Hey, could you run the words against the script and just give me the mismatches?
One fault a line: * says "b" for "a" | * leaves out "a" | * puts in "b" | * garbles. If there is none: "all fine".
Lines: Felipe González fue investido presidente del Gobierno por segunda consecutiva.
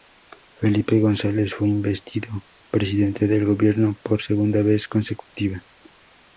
* puts in "vez"